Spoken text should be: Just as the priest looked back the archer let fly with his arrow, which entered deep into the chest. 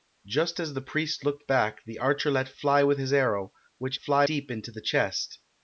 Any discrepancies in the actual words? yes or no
yes